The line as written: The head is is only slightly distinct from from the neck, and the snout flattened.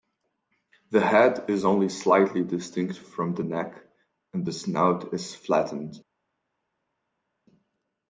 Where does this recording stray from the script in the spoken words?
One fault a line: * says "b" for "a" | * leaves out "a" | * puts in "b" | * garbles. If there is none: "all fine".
* leaves out "is"
* leaves out "from"
* puts in "is"